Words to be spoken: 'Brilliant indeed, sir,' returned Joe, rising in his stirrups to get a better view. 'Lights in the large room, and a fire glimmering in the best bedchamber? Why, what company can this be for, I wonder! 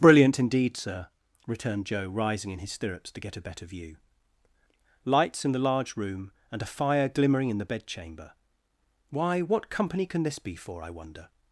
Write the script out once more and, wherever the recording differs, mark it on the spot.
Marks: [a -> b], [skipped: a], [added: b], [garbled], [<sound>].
'Brilliant indeed, sir,' returned Joe, rising in his stirrups to get a better view. 'Lights in the large room, and a fire glimmering in the [skipped: best] bedchamber? Why, what company can this be for, I wonder!